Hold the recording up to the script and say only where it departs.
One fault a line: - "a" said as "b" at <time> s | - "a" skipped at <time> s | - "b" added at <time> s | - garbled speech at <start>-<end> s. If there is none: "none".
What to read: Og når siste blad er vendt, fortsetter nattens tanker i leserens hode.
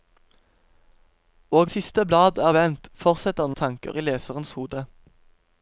- "når" skipped at 1.7 s
- "nattens" skipped at 3.5 s